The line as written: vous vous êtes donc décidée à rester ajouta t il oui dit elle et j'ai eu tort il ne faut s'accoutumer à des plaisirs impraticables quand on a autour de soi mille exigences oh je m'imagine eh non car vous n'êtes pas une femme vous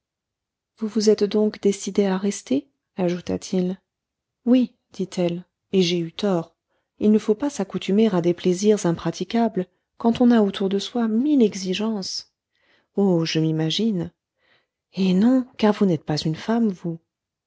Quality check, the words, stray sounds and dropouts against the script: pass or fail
fail